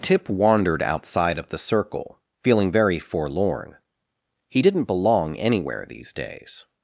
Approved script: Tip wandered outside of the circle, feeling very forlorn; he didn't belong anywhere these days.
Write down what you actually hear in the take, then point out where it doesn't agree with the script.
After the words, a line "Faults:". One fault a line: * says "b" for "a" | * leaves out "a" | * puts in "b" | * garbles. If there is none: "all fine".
Tip wandered outside of the circle, feeling very forlorn; he didn't belong anywhere these days.
Faults:
all fine